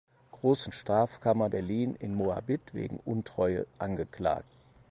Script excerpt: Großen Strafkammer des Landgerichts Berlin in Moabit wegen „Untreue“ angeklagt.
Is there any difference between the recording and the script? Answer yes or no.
yes